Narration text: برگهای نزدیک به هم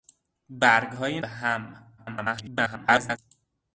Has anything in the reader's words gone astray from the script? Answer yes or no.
yes